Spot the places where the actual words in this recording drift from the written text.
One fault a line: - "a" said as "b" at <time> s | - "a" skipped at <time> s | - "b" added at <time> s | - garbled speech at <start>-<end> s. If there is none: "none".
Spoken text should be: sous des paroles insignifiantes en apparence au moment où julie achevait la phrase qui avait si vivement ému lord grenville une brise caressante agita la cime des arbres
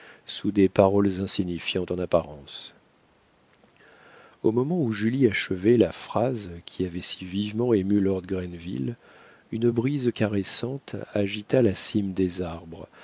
none